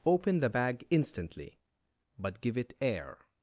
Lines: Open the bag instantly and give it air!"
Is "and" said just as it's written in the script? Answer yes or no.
no